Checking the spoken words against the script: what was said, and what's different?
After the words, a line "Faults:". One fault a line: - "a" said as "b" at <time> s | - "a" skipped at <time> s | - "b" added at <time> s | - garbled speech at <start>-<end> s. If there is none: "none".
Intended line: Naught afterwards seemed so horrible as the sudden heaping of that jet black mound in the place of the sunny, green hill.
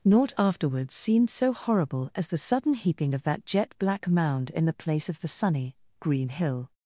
Naught afterwards seemed so horrible as the sudden heaping of that jet black mound in the place of the sunny, green hill.
Faults:
none